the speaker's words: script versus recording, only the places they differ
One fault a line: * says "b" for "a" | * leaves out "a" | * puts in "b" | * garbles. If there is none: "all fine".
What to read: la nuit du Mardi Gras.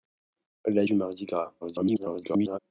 * leaves out "nuit"
* garbles